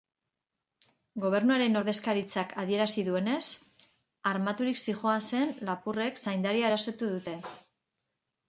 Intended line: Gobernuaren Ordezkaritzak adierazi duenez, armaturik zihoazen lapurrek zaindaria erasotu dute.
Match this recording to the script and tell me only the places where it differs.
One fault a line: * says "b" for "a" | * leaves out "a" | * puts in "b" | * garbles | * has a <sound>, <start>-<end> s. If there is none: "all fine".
all fine